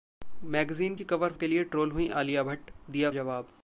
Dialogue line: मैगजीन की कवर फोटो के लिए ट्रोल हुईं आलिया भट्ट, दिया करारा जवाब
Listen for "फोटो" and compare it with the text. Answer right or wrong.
wrong